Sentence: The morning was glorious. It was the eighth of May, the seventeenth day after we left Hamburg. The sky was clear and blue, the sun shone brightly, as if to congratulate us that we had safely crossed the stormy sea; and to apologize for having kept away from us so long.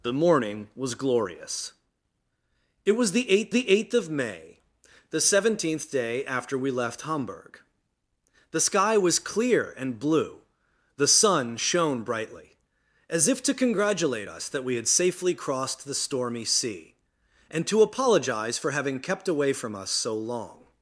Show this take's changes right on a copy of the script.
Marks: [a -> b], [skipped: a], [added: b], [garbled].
The morning was glorious. It was the eighth [added: the eighth] of May, the seventeenth day after we left Hamburg. The sky was clear and blue, the sun shone brightly, as if to congratulate us that we had safely crossed the stormy sea; and to apologize for having kept away from us so long.